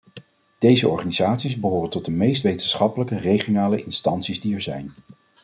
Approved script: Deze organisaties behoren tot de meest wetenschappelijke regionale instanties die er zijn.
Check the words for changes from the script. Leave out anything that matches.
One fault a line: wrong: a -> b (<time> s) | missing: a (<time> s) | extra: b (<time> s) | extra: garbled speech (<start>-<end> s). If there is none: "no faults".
no faults